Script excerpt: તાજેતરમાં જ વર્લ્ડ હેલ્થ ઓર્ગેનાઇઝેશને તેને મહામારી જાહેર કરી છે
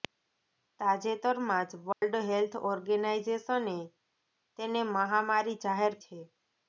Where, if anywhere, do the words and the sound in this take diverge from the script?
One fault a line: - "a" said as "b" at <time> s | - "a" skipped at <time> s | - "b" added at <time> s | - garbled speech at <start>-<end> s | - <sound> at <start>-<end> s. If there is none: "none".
- dropout at 1.9-2.0 s
- "કરી" skipped at 6.0 s